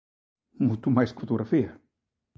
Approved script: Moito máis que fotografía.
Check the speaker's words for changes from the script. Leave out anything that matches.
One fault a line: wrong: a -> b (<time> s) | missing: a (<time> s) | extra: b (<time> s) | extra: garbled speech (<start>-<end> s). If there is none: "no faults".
no faults